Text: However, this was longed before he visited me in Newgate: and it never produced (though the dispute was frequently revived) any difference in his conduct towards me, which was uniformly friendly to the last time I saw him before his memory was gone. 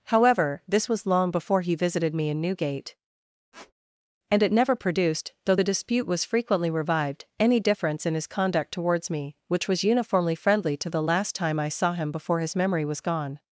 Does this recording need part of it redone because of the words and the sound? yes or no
yes